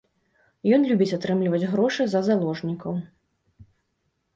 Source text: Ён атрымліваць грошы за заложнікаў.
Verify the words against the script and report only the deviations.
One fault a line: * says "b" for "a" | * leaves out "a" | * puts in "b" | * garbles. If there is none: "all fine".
* puts in "любіць"